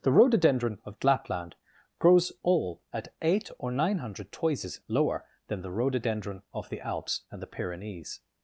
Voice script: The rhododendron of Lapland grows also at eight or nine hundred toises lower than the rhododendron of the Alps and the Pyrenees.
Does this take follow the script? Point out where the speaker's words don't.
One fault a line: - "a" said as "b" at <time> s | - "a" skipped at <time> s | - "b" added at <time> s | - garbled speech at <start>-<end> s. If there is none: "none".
- "also" said as "all" at 2.4 s